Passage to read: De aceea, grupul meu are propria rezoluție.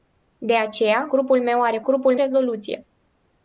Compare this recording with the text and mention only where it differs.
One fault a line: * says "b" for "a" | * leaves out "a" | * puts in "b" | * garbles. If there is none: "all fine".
* says "grupul" for "propria"